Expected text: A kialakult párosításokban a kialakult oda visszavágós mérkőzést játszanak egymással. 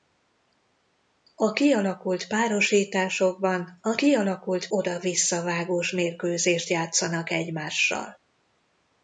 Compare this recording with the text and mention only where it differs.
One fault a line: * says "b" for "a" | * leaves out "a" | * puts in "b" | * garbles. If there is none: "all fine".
all fine